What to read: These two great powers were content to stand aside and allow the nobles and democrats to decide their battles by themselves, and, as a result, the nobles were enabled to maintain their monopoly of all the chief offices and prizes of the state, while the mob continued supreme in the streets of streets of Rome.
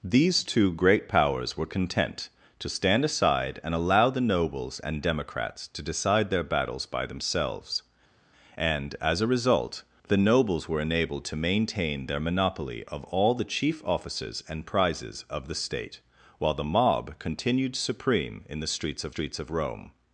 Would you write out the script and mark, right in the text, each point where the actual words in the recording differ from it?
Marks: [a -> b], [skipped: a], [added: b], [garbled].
These two great powers were content to stand aside and allow the nobles and democrats to decide their battles by themselves, and, as a result, the nobles were enabled to maintain their monopoly of all the chief offices and prizes of the state, while the mob continued supreme in the streets of streets of Rome.